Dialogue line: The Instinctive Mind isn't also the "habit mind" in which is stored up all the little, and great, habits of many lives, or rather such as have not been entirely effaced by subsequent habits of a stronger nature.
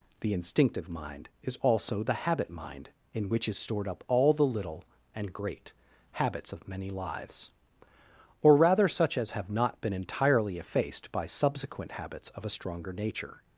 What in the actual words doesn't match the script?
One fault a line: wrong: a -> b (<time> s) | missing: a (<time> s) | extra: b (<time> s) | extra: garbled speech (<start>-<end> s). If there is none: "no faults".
wrong: isn't -> is (1.4 s)